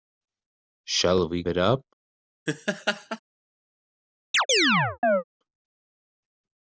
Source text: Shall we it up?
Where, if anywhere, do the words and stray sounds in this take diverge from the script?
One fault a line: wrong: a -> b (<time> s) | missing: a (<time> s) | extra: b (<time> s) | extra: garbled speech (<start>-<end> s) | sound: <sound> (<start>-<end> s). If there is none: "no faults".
sound: laugh (2.5-3.2 s)
sound: chirp (4.3-5.2 s)